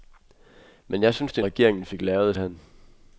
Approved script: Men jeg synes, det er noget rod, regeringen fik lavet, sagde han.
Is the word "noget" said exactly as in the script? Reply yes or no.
no